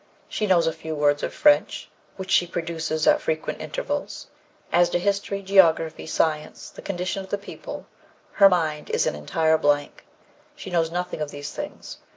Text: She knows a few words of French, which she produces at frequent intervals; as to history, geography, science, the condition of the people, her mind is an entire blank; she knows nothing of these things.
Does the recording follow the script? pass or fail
pass